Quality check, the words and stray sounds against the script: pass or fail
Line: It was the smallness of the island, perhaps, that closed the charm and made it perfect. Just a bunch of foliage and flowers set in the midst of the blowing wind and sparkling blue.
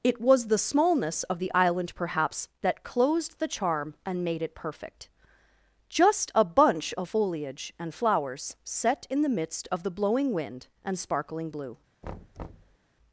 fail